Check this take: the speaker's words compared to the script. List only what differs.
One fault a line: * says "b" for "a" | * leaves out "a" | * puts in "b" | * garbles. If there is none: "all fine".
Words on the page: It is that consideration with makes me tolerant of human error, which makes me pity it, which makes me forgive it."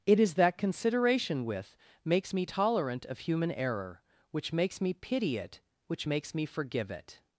all fine